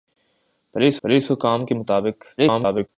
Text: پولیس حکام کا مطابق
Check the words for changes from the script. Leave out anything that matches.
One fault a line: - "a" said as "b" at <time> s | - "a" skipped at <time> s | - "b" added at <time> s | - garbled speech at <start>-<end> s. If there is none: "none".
- "پولیس" added at 1.0 s
- garbled speech at 2.4-2.9 s